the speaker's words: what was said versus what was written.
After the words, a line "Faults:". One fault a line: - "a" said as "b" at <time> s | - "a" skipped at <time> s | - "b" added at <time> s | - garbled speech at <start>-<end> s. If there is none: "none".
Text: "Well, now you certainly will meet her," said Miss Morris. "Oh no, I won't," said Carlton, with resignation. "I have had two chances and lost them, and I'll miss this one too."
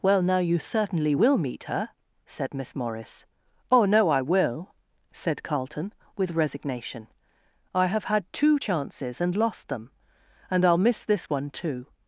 "Well, now you certainly will meet her," said Miss Morris. "Oh no, I will," said Carlton, with resignation. "I have had two chances and lost them, and I'll miss this one too."
Faults:
- "won't" said as "will" at 4.2 s